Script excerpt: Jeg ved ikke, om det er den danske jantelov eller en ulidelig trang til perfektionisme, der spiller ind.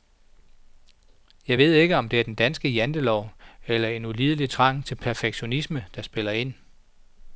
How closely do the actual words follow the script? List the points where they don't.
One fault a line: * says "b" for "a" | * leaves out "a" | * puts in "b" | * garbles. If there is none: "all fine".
all fine